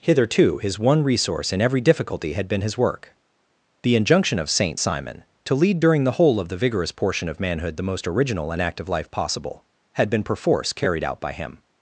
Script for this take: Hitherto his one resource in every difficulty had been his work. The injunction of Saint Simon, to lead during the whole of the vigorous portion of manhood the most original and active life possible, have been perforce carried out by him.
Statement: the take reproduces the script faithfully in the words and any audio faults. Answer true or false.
false